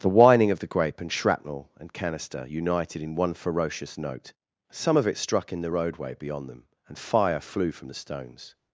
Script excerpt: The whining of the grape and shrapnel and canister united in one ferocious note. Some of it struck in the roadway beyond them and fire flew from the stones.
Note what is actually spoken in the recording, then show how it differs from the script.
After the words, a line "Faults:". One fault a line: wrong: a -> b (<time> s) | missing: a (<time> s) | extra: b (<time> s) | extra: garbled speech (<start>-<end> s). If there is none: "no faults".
The whining of the grape and shrapnel and canister united in one ferocious note. Some of it struck in the roadway beyond them and fire flew from the stones.
Faults:
no faults